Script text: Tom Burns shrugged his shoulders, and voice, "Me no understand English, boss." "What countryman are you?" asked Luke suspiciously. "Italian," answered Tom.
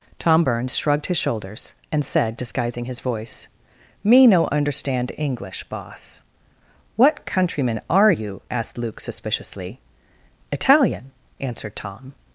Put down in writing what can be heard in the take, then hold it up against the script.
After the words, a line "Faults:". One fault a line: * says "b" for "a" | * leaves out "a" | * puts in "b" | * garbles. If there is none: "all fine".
Tom Burns shrugged his shoulders, and said, disguising his voice, "Me no understand English, boss." "What countryman are you?" asked Luke suspiciously. "Italian," answered Tom.
Faults:
* puts in "said disguising his"